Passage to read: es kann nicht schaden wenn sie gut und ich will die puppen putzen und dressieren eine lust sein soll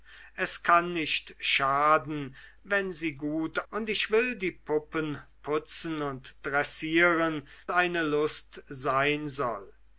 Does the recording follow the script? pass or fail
pass